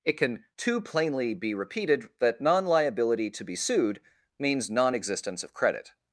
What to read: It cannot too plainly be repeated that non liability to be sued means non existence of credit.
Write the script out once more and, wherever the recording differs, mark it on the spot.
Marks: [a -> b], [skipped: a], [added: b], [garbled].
It [cannot -> can] too plainly be repeated that non liability to be sued means non existence of credit.